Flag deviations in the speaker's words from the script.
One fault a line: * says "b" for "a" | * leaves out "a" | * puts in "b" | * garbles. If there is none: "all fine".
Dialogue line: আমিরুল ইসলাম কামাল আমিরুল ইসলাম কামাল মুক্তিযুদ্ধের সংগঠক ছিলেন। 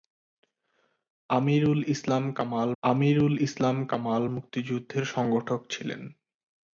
all fine